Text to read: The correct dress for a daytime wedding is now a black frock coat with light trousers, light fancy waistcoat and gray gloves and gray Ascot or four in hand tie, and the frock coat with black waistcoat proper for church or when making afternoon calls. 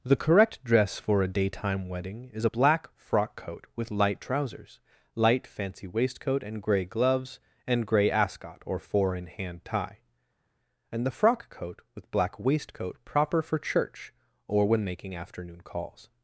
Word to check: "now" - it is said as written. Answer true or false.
false